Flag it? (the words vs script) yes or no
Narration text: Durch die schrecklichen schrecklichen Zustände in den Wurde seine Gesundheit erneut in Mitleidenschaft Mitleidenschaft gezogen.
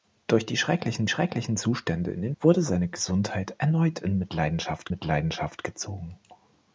no